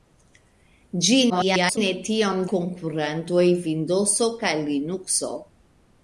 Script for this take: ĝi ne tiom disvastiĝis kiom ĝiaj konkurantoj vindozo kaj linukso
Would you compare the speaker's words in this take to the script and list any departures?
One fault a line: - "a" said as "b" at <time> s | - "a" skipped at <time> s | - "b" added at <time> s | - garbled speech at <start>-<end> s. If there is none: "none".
- garbled speech at 1.3-1.8 s
- "disvastiĝis kiom ĝiaj" skipped at 2.4 s